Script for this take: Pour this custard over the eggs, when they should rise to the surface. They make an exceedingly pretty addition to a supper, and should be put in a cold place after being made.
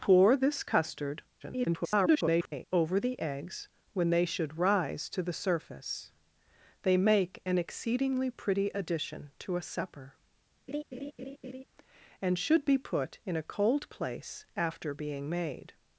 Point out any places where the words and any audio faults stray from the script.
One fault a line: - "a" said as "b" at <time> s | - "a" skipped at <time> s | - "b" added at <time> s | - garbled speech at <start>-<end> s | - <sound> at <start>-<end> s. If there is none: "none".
- garbled speech at 1.4-2.6 s
- laugh at 10.7-11.6 s